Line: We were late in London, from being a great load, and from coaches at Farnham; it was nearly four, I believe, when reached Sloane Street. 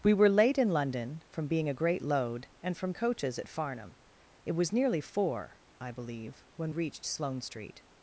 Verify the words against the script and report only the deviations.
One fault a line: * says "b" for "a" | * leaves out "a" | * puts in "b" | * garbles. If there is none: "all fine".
all fine